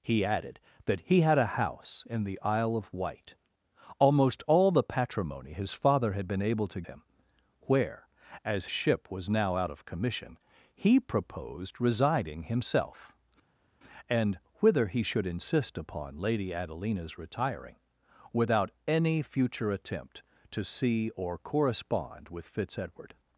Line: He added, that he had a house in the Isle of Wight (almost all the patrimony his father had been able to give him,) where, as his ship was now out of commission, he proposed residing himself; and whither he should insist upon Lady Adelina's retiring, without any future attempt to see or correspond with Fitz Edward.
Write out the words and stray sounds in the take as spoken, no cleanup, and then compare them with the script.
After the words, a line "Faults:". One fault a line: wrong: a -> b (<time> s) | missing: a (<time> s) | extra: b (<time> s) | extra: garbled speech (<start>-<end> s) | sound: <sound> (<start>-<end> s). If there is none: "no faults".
He added, that he had a house in the Isle of Wight (almost all the patrimony his father had been able to him,) where, as ship was now out of commission, he proposed residing himself; and whither he should insist upon Lady Adelina's retiring, without any future attempt to see or correspond with Fitz Edward.
Faults:
missing: give (6.8 s)
missing: his (8.7 s)